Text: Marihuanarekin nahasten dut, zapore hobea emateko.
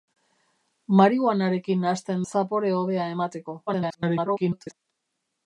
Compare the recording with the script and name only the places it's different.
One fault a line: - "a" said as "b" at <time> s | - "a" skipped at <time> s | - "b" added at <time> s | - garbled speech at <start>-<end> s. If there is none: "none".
- "dut" skipped at 2.2 s
- garbled speech at 3.7-4.7 s